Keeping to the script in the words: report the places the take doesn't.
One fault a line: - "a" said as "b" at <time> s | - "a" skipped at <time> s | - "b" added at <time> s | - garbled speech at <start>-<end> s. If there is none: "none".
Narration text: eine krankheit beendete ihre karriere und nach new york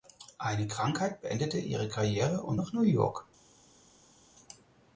none